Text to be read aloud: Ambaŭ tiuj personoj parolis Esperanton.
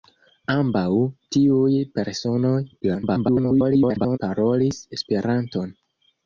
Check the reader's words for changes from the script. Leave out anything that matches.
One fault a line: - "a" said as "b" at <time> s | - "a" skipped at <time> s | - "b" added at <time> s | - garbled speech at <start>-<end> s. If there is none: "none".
- garbled speech at 2.8-4.2 s